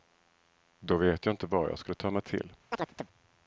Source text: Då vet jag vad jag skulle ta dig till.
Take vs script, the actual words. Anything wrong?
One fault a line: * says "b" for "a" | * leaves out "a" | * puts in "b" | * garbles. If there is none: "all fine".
* puts in "inte"
* says "mig" for "dig"